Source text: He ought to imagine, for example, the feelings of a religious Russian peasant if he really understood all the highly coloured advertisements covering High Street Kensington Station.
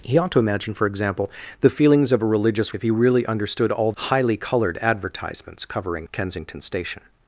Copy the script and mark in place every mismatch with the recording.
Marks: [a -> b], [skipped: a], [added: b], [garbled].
He ought to imagine, for example, the feelings of a religious [skipped: Russian peasant] if he really understood all [skipped: the] highly coloured advertisements covering [skipped: High Street] Kensington Station.